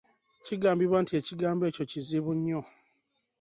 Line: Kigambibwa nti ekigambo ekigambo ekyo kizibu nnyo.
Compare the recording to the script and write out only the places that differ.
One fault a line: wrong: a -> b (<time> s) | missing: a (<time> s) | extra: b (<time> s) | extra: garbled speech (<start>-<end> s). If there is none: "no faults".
missing: ekigambo (1.6 s)